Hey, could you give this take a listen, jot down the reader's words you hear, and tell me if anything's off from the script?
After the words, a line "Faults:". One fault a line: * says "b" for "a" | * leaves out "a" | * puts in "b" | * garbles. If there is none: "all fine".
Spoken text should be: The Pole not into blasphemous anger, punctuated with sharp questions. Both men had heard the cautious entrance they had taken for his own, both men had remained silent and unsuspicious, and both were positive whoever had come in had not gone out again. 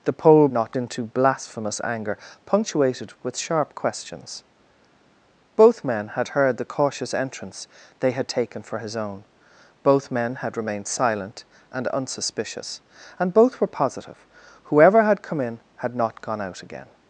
The Pole not into blasphemous anger, punctuated with sharp questions. Both men had heard the cautious entrance they had taken for his own, both men had remained silent and unsuspicious, and both were positive whoever had come in had not gone out again.
Faults:
all fine